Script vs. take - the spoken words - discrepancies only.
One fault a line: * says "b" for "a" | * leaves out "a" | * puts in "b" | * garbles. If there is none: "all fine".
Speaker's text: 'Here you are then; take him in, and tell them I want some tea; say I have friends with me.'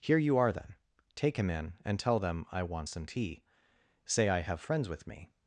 all fine